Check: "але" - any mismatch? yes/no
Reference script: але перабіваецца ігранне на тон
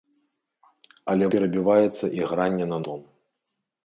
no